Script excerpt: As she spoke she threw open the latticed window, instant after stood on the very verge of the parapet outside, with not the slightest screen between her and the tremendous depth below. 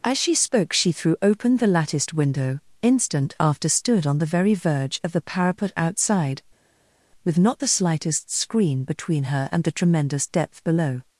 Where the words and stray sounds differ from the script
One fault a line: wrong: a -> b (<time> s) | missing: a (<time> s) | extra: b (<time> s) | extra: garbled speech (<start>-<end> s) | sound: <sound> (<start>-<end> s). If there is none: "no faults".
no faults